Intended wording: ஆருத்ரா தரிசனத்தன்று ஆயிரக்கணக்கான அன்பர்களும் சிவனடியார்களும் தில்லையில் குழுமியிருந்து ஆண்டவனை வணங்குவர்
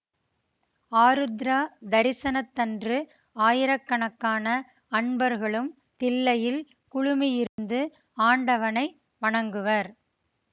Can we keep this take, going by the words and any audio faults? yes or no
no